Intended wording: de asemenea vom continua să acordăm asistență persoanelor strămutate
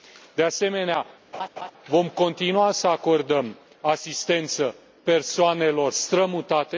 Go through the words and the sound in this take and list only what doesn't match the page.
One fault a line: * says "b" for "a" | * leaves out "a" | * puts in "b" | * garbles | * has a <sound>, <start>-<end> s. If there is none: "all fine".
* has a laugh, 1.3-1.7 s